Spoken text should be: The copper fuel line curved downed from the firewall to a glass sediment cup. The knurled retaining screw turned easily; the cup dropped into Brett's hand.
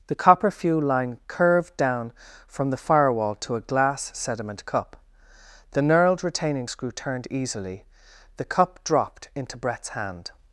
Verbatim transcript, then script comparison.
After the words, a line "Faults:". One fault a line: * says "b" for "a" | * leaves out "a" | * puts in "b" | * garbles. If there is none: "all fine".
The copper fuel line curved down from the firewall to a glass sediment cup. The knurled retaining screw turned easily; the cup dropped into Brett's hand.
Faults:
* says "down" for "downed"